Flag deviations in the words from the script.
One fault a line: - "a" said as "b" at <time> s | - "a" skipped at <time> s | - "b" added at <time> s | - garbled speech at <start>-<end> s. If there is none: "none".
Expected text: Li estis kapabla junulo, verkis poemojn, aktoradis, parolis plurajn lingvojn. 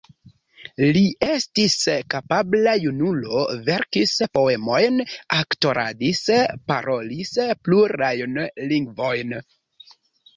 none